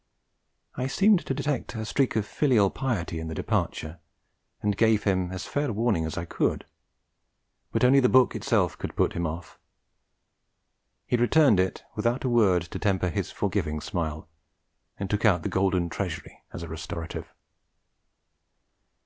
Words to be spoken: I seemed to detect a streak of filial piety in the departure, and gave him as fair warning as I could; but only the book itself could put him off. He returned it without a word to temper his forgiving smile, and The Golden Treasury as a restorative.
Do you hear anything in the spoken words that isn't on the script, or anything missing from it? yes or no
yes